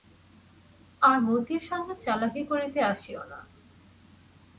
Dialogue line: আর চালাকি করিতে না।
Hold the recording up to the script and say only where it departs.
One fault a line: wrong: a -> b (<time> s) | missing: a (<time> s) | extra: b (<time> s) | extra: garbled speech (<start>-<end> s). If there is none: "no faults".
extra: মতির সঙ্গে (1.2 s)
extra: আসিও (2.9 s)